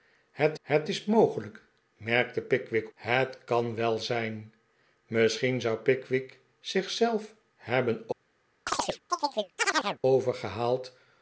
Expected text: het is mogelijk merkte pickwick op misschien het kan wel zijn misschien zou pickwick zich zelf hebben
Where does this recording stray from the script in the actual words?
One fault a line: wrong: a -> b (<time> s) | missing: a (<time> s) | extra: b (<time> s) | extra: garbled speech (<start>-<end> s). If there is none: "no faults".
extra: het (0.6 s)
missing: op misschien (2.9 s)